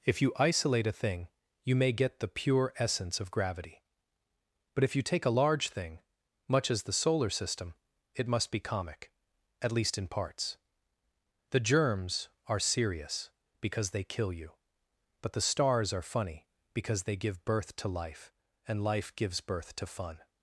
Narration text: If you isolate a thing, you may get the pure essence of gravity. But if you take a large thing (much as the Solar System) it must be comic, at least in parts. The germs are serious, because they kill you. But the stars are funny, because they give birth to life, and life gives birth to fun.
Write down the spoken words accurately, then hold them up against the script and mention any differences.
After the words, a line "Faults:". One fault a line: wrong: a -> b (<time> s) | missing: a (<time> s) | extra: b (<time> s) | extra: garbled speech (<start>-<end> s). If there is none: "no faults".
If you isolate a thing, you may get the pure essence of gravity. But if you take a large thing (much as the Solar System) it must be comic, at least in parts. The germs are serious, because they kill you. But the stars are funny, because they give birth to life, and life gives birth to fun.
Faults:
no faults